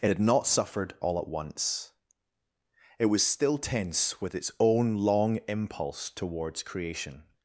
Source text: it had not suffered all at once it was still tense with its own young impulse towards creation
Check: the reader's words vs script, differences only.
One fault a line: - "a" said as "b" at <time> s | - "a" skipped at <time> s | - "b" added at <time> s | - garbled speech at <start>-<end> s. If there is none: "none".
- "young" said as "long" at 5.0 s